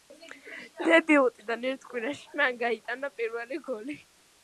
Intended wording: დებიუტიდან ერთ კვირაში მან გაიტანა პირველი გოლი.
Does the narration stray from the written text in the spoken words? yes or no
no